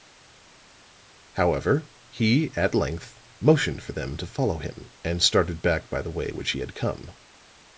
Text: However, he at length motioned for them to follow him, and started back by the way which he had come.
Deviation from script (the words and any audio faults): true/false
false